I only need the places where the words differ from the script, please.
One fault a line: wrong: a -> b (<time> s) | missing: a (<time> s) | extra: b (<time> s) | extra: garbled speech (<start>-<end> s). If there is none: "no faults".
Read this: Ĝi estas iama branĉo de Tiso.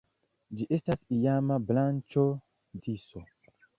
missing: de (2.2 s)